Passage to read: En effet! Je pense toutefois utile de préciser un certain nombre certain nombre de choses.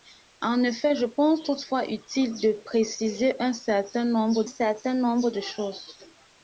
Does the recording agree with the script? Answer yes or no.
yes